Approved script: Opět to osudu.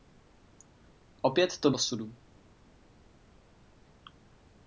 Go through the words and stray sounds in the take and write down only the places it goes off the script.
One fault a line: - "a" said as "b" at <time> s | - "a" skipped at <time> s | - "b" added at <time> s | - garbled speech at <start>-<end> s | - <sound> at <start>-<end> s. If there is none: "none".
none